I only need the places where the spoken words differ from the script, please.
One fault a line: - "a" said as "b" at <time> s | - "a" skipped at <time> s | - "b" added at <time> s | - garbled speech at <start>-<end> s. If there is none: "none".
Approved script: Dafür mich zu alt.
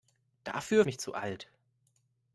none